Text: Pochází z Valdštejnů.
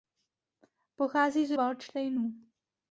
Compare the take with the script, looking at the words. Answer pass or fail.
pass